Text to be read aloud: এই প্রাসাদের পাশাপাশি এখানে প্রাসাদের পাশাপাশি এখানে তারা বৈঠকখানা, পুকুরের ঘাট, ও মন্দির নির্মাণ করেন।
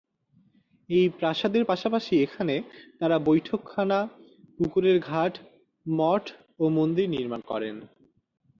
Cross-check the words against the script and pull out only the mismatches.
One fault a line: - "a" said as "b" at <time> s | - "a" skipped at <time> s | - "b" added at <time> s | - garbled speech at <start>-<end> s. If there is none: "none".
- "প্রাসাদের পাশাপাশি এখানে" skipped at 2.5 s
- "মঠ" added at 5.9 s